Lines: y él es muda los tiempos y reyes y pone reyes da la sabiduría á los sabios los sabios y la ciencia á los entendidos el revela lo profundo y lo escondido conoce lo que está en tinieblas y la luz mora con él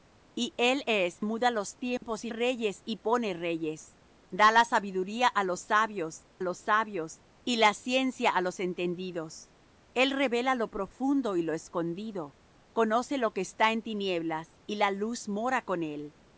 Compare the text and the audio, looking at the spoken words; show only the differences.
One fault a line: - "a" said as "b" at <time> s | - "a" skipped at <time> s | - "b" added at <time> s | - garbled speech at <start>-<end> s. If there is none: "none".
none